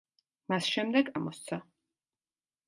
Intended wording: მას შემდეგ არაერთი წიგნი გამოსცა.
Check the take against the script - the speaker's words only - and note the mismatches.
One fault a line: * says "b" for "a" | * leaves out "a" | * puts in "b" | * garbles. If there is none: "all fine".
* leaves out "არაერთი წიგნი"